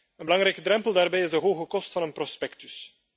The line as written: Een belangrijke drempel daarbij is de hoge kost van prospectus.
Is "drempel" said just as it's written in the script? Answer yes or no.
yes